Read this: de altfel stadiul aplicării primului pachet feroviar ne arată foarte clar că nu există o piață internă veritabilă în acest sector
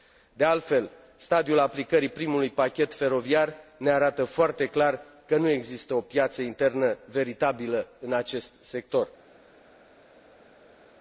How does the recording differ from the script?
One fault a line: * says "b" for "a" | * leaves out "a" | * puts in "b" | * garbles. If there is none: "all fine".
all fine